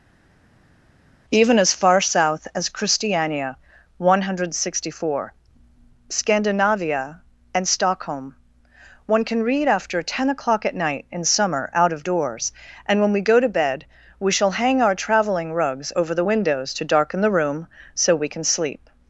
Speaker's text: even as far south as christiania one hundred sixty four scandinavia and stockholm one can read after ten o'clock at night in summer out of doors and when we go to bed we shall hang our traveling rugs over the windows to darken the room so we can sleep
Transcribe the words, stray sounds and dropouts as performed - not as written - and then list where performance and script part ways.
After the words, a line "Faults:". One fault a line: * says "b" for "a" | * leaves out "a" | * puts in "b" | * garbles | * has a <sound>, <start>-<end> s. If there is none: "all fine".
even as far south as christiania one hundred sixty four scandinavia and stockholm one can read after ten o'clock at night in summer out of doors and when we go to bed we shall hang our traveling rugs over the windows to darken the room so we can sleep
Faults:
all fine